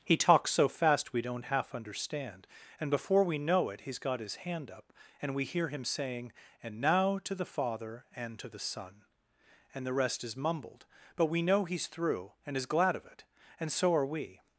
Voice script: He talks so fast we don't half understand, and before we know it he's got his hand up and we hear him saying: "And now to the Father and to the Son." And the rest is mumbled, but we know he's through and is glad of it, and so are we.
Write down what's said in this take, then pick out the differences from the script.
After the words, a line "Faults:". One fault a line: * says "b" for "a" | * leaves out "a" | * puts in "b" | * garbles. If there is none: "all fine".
He talks so fast we don't half understand, and before we know it he's got his hand up and we hear him saying: "And now to the Father and to the Son." And the rest is mumbled, but we know he's through and is glad of it, and so are we.
Faults:
all fine